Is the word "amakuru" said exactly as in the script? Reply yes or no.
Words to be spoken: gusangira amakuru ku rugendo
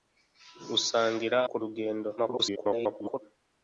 no